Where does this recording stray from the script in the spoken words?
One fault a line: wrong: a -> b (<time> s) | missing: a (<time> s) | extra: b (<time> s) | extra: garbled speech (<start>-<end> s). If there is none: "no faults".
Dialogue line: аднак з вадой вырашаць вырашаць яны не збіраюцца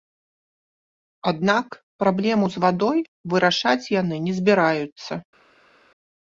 extra: праблему (2.0 s)
missing: вырашаць (3.8 s)